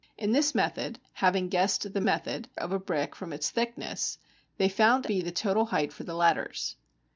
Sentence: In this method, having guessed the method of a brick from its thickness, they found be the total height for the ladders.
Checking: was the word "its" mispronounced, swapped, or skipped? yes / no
no